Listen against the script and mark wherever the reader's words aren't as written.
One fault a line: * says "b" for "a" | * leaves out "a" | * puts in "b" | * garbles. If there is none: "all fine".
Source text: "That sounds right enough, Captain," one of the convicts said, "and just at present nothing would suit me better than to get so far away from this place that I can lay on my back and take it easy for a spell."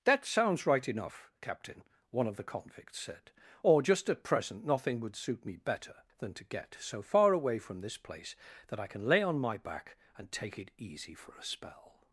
* says "or" for "and"